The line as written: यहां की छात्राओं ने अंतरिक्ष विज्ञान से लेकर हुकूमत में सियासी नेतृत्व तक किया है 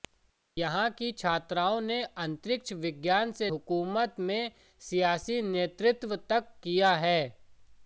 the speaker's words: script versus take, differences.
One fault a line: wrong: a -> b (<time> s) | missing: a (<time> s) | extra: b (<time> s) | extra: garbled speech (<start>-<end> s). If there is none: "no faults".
missing: लेकर (3.5 s)